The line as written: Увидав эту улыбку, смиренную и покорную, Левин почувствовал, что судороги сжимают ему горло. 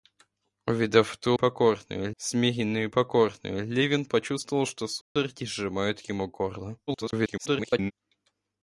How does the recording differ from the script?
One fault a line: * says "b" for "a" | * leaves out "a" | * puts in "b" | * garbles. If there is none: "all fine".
* says "покорную" for "улыбку"
* garbles